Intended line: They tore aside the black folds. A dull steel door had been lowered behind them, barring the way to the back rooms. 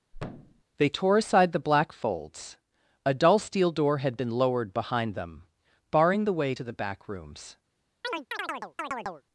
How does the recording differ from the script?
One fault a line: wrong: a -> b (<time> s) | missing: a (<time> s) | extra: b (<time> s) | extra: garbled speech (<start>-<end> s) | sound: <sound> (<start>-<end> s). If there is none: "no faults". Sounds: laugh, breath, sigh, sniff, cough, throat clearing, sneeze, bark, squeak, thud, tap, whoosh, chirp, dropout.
sound: thud (0.1-0.6 s)
sound: chirp (8.0-9.2 s)